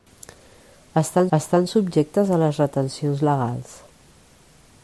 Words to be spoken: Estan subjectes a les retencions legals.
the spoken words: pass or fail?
fail